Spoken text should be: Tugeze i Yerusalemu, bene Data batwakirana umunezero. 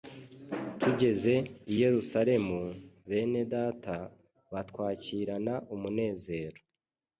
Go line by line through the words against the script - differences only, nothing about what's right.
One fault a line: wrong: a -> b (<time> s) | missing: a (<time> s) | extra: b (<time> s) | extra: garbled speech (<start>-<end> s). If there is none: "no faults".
no faults